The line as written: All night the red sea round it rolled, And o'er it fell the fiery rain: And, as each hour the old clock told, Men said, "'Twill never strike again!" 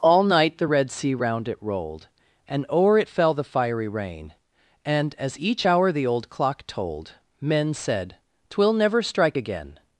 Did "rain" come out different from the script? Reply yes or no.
no